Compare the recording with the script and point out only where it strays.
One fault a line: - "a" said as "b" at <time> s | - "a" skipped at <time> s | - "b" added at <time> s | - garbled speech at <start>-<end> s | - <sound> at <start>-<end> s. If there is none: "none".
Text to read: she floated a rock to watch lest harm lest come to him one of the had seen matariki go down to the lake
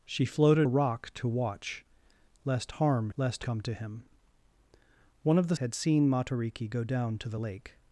none